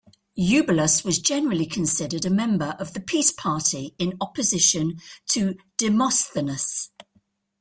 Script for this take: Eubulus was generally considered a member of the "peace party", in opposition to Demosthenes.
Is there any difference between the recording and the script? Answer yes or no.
no